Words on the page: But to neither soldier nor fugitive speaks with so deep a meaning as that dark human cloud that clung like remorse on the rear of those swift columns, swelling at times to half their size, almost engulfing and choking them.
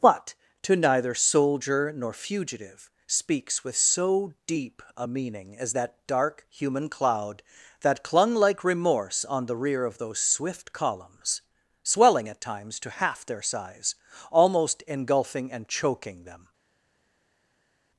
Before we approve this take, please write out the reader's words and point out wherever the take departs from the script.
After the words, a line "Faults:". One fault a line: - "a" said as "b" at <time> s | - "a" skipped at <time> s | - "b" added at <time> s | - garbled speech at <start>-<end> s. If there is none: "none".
But to neither soldier nor fugitive speaks with so deep a meaning as that dark human cloud that clung like remorse on the rear of those swift columns, swelling at times to half their size, almost engulfing and choking them.
Faults:
none